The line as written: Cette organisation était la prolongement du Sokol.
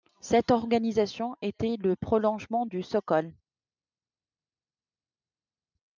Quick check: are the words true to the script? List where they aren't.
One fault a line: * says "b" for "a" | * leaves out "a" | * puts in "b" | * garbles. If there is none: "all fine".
* says "le" for "la"